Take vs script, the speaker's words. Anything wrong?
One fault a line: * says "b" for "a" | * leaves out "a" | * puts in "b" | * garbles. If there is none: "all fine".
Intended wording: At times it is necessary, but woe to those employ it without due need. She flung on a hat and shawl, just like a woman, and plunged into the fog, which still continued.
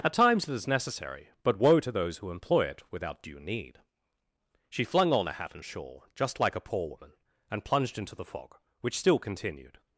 * puts in "who"
* puts in "poor"